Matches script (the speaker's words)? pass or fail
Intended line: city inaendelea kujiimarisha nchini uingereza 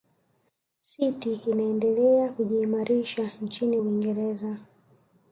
pass